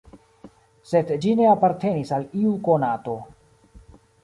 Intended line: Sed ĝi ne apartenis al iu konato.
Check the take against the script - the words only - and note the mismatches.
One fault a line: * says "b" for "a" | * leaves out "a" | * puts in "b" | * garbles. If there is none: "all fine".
all fine